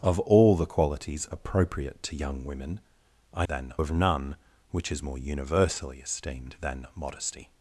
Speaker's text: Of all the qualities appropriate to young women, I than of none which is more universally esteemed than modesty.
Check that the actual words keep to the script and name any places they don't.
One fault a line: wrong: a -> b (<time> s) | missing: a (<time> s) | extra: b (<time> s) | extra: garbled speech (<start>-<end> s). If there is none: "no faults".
no faults